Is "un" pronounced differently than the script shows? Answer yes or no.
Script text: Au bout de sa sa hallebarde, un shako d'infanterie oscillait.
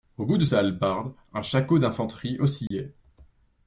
no